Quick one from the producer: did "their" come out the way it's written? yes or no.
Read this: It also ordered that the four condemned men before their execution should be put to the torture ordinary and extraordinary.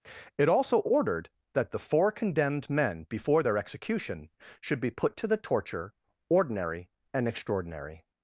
yes